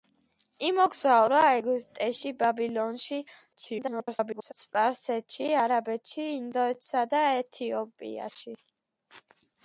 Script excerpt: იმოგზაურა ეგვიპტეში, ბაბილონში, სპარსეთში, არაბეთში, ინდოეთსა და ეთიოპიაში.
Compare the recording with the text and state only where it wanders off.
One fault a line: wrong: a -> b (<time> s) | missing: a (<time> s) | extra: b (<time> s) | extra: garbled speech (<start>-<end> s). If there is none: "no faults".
extra: garbled speech (3.5-4.5 s)